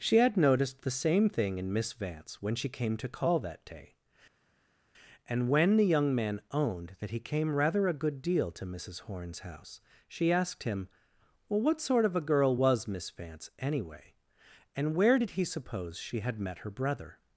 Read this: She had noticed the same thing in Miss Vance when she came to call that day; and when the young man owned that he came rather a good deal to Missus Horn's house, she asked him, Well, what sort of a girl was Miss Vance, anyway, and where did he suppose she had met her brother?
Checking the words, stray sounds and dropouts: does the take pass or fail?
pass